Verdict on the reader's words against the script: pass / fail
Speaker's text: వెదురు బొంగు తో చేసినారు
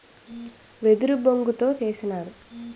pass